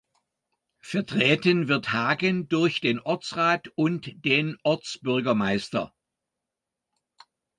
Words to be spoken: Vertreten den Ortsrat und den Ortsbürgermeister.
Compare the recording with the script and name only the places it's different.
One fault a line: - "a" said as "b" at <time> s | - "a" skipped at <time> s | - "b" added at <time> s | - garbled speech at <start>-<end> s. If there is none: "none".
- "wird Hagen durch" added at 1.7 s